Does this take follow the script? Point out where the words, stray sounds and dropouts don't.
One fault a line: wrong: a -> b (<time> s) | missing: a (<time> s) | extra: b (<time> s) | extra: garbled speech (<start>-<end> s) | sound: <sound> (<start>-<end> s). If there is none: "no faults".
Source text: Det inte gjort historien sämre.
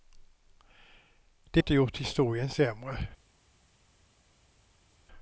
no faults